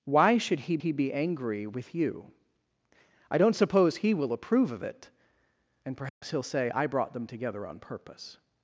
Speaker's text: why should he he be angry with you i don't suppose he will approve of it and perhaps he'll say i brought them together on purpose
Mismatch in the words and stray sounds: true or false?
true